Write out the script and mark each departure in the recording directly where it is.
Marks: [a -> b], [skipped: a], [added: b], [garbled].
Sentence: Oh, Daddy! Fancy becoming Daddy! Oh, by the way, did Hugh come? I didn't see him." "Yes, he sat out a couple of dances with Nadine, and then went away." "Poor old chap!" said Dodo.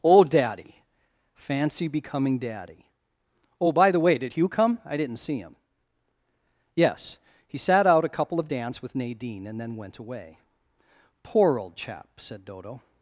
Oh, Daddy! Fancy becoming Daddy! Oh, by the way, did Hugh come? I didn't see him." "Yes, he sat out a couple of [dances -> dance] with Nadine, and then went away." "Poor old chap!" said Dodo.